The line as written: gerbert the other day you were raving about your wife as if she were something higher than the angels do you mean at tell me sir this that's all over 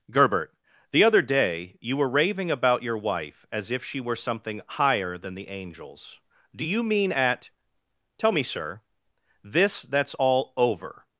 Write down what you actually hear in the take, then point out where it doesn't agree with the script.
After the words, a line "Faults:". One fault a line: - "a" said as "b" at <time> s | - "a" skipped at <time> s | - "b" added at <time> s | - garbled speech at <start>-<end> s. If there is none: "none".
gerbert the other day you were raving about your wife as if she were something higher than the angels do you mean at tell me sir this that's all over
Faults:
none